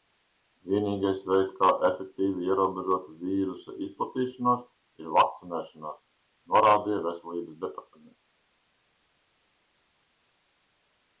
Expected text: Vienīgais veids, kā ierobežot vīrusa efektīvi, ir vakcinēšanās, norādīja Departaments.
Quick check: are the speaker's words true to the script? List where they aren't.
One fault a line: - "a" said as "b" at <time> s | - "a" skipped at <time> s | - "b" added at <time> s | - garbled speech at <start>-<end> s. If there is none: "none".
- "efektīvi" added at 1.9 s
- "efektīvi" said as "izplatīšanos" at 3.9 s
- "Veselības" added at 7.1 s